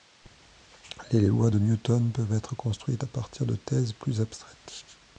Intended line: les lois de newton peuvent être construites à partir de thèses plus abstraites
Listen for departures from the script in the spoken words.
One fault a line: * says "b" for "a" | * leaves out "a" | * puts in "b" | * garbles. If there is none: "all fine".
all fine